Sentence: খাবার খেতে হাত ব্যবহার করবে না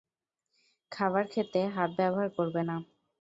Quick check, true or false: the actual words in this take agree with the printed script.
true